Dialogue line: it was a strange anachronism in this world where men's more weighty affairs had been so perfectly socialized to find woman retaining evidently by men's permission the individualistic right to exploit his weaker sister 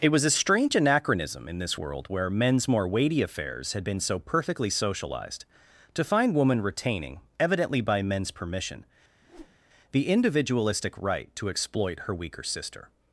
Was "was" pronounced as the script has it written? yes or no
yes